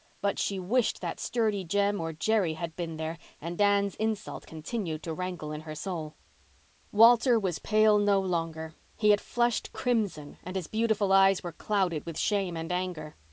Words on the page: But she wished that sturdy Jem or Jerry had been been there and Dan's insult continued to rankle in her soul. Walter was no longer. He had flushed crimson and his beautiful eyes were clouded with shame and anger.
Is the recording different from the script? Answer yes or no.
yes